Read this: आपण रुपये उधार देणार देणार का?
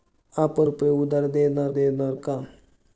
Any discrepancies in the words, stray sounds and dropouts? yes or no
no